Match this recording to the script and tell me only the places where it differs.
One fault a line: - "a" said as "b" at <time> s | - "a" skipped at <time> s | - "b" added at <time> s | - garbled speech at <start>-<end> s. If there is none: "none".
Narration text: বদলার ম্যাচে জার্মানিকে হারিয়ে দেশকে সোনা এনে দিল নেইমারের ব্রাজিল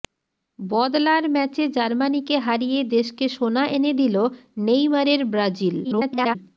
- garbled speech at 5.8-6.4 s